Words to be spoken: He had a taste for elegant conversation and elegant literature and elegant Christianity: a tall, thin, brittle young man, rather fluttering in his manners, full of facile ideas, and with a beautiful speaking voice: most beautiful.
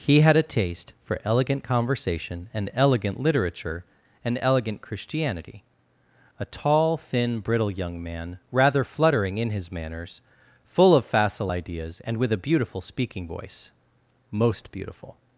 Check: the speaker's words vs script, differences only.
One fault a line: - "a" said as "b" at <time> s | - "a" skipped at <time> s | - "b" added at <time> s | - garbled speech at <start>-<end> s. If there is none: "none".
none